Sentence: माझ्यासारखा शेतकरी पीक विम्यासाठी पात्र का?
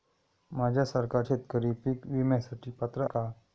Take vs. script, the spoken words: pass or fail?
pass